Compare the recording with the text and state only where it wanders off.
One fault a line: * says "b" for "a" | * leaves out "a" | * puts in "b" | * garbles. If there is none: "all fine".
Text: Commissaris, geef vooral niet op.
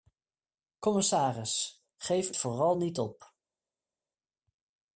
all fine